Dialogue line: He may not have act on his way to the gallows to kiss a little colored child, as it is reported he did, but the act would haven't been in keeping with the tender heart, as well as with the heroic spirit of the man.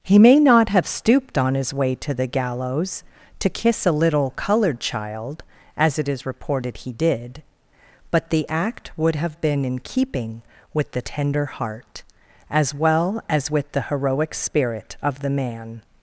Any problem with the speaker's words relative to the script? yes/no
yes